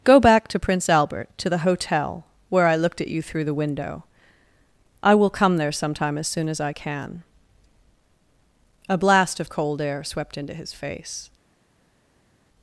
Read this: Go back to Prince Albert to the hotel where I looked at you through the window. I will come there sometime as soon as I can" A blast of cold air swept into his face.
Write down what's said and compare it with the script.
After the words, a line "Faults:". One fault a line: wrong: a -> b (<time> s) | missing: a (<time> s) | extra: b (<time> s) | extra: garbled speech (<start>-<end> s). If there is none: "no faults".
Go back to Prince Albert to the hotel where I looked at you through the window. I will come there sometime as soon as I can" A blast of cold air swept into his face.
Faults:
no faults